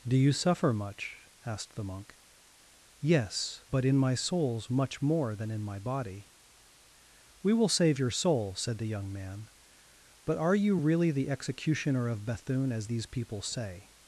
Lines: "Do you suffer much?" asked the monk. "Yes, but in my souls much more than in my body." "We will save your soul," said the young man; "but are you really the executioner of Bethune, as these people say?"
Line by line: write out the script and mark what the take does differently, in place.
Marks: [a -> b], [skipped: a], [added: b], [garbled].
"Do you suffer much?" asked the monk. "Yes, but in my souls much more than in my body." "We will save your soul," said the young man; "but are you really the executioner of Bethune, as these people say?"